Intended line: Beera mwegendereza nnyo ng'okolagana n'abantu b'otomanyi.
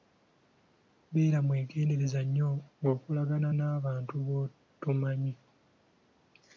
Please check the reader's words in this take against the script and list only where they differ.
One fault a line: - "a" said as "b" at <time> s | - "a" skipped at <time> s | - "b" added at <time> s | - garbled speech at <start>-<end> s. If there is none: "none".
none